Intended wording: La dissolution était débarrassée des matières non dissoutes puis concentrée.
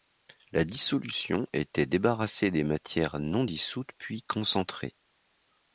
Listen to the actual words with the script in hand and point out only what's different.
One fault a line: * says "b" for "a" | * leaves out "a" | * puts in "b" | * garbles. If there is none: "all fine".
all fine